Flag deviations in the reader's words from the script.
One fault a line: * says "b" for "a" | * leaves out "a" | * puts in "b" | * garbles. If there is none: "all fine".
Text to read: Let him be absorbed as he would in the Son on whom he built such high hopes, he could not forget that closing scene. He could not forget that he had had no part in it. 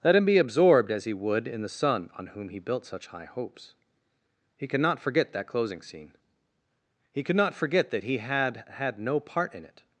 all fine